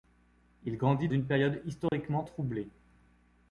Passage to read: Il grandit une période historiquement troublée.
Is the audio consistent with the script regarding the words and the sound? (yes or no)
no